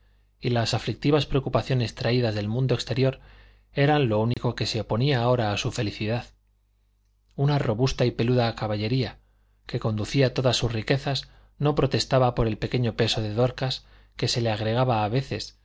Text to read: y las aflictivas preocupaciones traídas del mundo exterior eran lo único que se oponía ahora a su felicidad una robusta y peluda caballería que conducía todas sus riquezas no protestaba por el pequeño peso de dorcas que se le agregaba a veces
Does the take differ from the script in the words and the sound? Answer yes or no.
yes